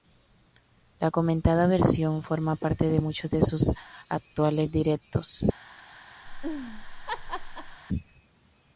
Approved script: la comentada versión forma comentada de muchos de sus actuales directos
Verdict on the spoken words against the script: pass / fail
fail